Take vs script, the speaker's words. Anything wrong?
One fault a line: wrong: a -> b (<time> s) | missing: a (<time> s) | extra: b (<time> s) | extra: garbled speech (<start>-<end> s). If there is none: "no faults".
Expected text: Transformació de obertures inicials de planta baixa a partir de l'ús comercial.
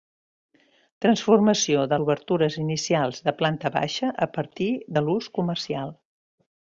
no faults